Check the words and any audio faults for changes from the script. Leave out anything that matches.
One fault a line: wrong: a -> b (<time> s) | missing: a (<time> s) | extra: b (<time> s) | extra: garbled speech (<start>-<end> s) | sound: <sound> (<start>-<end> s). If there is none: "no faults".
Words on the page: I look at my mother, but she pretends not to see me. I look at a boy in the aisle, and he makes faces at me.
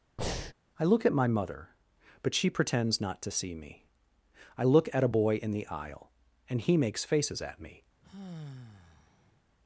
sound: breath (0.2-0.5 s)
sound: sigh (8.0-9.4 s)